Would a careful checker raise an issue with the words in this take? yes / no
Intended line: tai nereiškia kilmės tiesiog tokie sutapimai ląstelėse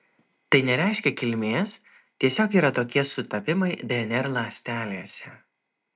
yes